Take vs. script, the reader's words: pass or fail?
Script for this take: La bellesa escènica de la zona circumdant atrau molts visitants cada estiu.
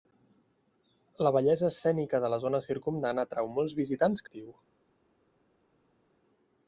fail